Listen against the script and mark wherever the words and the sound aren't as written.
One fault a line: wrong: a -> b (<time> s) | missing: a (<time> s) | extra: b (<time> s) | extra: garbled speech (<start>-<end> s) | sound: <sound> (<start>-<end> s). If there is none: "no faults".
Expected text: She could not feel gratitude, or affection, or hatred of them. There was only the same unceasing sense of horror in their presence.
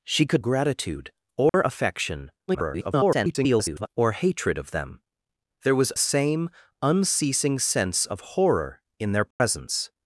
missing: not feel (0.4 s)
sound: dropout (1.5-1.5 s)
extra: garbled speech (2.5-3.9 s)
missing: only the (5.9 s)
sound: dropout (9.3-9.4 s)